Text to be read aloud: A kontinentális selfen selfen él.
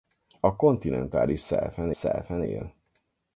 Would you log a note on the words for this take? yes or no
no